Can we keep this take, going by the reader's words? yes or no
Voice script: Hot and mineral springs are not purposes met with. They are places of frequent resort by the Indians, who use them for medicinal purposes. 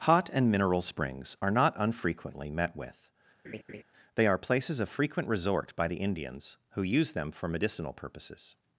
no